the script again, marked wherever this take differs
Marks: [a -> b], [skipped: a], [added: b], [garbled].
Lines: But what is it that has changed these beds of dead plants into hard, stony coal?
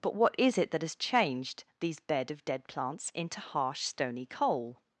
But what is it that has changed these [beds -> bed] of dead plants into [hard, -> harsh] stony coal?